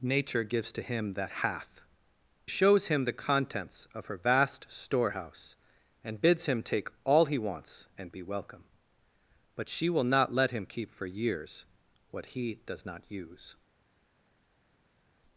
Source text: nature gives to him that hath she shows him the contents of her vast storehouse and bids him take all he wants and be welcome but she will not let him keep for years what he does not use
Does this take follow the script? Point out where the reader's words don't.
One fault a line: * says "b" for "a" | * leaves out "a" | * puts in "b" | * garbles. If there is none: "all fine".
* leaves out "she"